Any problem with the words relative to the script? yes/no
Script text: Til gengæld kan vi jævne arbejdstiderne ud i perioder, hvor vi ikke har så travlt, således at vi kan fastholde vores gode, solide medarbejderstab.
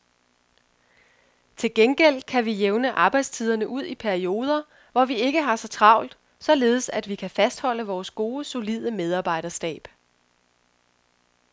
no